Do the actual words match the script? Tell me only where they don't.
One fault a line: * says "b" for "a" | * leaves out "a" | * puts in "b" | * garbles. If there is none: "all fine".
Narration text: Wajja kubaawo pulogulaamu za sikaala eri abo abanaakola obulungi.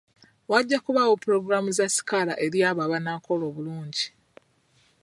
all fine